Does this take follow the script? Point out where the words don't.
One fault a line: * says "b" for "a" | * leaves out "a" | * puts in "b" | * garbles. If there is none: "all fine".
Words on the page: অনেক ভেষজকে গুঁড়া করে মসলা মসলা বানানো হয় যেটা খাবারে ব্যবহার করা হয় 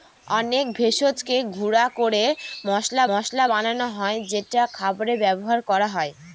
all fine